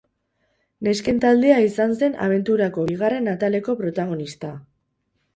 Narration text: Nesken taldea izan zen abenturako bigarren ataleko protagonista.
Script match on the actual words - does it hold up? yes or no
yes